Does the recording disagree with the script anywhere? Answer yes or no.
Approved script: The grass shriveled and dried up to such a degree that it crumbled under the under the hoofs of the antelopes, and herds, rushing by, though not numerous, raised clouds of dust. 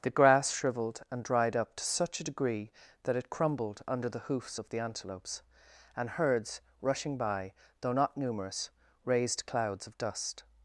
yes